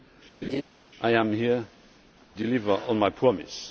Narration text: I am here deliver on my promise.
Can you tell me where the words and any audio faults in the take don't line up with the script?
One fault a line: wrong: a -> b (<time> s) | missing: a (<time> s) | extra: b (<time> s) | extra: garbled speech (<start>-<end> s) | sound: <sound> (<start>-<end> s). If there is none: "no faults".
sound: laugh (0.4-0.6 s)